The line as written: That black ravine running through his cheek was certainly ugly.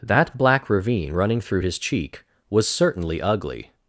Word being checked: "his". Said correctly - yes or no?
yes